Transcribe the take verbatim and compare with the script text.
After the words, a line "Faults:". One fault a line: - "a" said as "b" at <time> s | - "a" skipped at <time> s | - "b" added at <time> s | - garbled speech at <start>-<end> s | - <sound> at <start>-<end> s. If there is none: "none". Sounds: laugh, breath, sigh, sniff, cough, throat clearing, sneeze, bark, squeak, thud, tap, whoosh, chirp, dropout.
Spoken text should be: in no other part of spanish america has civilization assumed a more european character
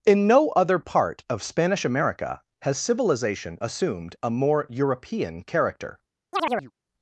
in no other part of spanish america has civilization assumed a more european character
Faults:
- chirp at 6.3-6.7 s